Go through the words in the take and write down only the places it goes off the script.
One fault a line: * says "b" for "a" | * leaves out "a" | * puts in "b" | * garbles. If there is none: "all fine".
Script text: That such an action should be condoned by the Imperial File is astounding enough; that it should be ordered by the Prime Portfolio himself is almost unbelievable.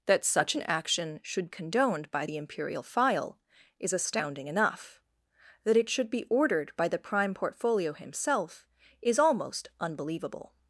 * leaves out "be"